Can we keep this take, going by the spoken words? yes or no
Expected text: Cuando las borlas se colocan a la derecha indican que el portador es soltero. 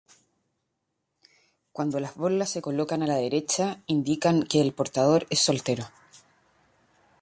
yes